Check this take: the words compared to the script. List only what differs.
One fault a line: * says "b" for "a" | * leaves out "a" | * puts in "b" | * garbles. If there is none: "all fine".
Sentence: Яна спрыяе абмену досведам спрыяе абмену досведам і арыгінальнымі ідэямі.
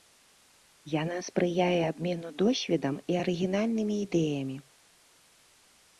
* leaves out "спрыяе абмену досведам"